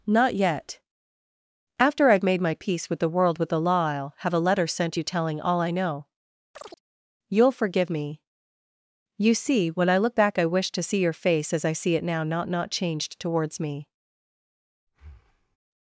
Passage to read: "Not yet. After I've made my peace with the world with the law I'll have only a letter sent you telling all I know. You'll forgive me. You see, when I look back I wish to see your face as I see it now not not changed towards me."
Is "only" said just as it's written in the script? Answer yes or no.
no